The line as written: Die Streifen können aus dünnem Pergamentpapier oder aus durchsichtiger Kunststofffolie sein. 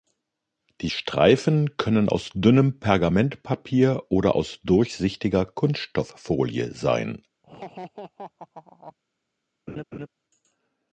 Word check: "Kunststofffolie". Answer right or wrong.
right